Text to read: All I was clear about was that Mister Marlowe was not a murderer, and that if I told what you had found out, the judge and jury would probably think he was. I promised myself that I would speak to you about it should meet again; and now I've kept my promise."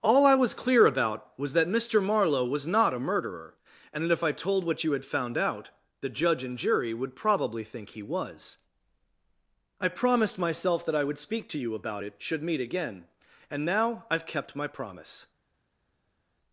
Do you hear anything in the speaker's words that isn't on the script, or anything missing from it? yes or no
no